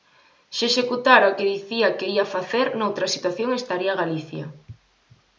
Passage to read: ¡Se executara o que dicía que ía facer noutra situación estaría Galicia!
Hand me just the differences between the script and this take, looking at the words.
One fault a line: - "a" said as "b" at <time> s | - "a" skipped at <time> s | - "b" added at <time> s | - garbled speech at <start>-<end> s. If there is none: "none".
none